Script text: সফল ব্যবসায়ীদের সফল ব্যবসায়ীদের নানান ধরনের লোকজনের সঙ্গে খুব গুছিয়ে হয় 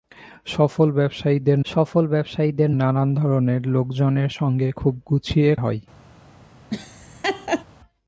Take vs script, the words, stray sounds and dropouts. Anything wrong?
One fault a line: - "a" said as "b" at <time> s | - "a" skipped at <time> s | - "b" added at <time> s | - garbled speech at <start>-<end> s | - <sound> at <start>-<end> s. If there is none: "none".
- laugh at 6.7-7.6 s